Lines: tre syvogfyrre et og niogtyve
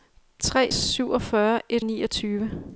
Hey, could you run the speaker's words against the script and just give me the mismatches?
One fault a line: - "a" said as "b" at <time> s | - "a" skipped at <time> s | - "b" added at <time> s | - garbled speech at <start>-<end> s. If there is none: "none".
none